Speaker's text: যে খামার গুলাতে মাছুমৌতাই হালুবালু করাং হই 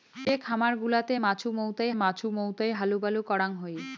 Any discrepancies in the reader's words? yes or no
yes